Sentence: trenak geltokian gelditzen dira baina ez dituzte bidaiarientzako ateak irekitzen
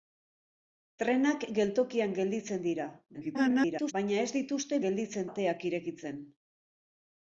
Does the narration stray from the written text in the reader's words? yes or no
yes